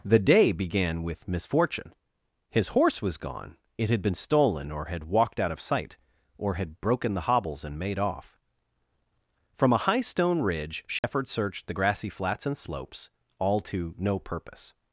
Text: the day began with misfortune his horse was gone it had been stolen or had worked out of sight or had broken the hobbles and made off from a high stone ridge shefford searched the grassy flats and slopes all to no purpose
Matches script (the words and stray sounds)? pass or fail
fail